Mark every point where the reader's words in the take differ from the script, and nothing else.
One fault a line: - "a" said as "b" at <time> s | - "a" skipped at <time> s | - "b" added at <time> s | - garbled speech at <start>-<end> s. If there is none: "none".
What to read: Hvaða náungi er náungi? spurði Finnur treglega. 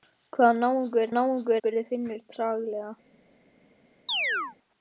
none